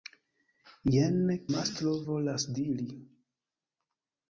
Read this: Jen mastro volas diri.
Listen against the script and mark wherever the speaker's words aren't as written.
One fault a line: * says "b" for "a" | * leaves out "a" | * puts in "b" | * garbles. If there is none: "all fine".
all fine